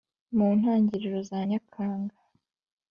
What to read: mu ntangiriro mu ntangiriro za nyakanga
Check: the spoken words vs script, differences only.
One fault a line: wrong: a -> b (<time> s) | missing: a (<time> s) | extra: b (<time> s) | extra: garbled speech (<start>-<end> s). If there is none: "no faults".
missing: mu ntangiriro (1.2 s)